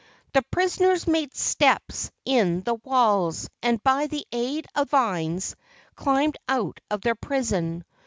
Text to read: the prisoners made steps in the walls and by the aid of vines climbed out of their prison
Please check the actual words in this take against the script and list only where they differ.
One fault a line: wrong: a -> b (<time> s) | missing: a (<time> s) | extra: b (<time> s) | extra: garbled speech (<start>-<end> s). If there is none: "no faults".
no faults